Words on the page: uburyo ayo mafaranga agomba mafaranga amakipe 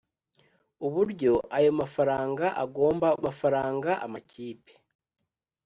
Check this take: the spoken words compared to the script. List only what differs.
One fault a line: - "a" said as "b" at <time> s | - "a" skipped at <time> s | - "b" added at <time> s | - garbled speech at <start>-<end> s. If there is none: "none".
none